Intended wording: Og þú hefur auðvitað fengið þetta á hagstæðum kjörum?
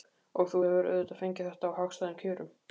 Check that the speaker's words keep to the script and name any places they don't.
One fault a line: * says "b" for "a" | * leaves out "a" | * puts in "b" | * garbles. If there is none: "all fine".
all fine